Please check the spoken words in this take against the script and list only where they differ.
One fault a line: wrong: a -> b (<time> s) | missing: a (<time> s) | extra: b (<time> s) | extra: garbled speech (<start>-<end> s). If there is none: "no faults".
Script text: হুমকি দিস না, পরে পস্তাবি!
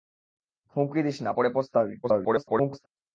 extra: garbled speech (2.0-2.9 s)